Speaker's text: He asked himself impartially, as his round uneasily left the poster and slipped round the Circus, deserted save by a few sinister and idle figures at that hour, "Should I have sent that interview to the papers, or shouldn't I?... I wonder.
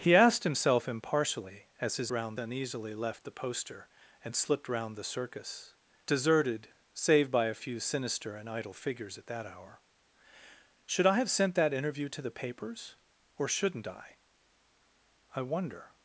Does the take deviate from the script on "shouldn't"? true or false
false